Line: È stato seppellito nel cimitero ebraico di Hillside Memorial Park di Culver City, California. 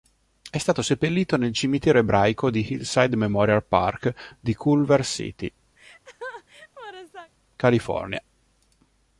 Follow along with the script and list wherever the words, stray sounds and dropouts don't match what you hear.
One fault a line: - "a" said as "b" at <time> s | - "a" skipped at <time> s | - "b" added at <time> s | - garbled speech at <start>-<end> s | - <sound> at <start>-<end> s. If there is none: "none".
- laugh at 5.8-7.3 s